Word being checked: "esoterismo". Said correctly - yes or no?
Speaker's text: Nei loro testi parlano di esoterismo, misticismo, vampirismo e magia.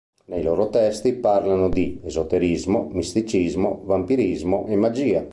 yes